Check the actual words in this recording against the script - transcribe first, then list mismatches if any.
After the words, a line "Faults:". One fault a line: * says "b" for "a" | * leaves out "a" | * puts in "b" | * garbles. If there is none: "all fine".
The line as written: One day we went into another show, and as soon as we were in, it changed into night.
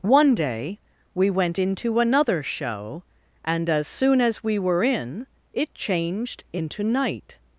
One day we went into another show, and as soon as we were in, it changed into night.
Faults:
all fine